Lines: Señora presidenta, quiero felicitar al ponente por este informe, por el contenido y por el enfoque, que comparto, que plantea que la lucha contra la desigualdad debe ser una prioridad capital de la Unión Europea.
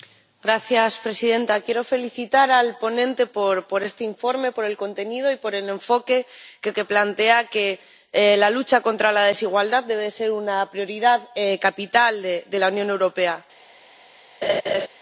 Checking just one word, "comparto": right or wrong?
wrong